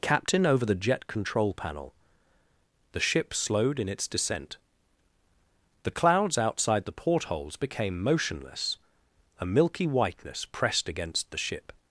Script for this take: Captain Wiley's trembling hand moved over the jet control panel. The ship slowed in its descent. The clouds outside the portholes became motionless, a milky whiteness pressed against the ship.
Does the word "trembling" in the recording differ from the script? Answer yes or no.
yes